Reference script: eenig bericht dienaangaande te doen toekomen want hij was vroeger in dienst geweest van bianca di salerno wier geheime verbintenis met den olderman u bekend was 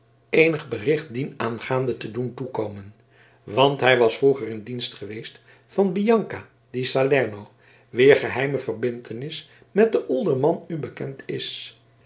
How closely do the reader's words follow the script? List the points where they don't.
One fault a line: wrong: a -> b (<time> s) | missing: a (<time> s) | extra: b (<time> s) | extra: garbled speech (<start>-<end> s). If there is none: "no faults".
wrong: was -> is (11.3 s)